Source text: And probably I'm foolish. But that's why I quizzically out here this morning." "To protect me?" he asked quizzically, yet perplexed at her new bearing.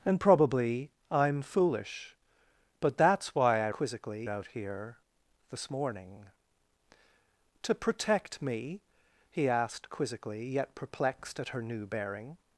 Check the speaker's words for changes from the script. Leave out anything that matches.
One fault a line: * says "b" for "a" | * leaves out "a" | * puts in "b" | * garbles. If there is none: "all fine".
all fine